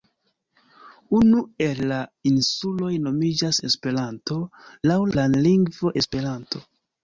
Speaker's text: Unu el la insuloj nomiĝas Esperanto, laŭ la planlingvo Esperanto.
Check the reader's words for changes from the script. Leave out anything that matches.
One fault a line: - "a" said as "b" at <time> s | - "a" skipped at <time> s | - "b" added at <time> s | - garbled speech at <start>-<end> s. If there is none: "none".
- "la" skipped at 5.0 s